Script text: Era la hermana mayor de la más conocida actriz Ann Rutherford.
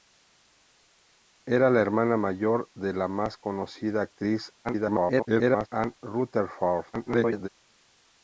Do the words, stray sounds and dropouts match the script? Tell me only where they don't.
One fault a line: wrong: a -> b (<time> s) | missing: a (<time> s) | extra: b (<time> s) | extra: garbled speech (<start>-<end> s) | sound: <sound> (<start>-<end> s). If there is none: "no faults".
extra: garbled speech (4.6-5.7 s)
extra: garbled speech (6.9-7.5 s)